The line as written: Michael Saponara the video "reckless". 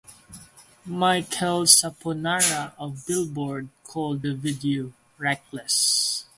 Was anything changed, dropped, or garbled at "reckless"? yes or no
no